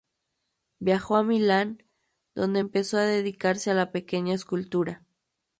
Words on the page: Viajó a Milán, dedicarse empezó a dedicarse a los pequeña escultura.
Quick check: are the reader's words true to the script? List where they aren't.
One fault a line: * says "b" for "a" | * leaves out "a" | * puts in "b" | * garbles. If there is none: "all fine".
* says "donde" for "dedicarse"
* says "la" for "los"